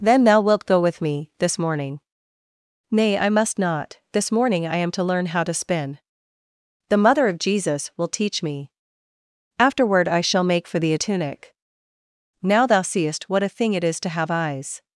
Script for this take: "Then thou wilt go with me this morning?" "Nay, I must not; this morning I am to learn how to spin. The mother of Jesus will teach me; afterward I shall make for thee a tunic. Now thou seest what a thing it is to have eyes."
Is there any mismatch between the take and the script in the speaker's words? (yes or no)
no